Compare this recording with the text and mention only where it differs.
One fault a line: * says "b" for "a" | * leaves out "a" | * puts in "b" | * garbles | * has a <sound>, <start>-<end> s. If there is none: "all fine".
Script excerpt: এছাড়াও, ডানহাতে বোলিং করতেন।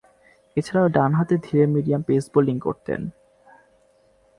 * puts in "ধীরে মিডিয়াম পেস"